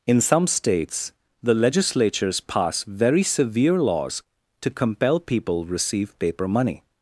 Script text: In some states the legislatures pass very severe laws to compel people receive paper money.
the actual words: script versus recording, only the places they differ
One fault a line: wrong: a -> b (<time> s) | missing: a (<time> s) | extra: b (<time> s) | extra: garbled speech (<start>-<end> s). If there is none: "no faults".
no faults